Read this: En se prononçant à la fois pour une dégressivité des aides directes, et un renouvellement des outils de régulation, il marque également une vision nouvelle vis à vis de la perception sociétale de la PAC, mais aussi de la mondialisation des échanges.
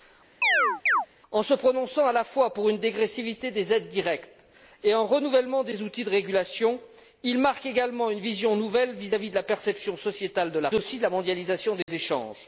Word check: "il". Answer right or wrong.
right